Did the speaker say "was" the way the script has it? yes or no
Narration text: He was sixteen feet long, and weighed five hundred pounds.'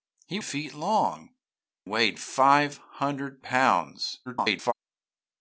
no